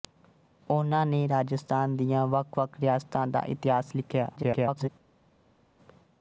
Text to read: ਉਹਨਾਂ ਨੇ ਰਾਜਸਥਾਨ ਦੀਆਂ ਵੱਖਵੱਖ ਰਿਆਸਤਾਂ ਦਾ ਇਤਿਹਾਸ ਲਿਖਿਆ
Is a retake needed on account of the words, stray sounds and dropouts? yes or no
yes